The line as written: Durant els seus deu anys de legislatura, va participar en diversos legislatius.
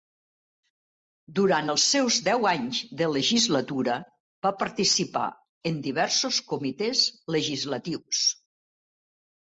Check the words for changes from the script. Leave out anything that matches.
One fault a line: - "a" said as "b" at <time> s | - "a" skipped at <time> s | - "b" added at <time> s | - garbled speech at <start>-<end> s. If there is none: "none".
- "comitès" added at 6.5 s